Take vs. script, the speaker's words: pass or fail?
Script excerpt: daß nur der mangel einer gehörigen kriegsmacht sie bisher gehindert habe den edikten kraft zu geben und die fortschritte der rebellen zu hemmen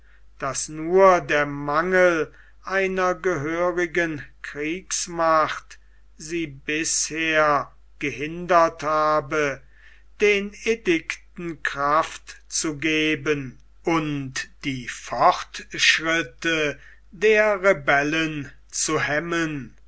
pass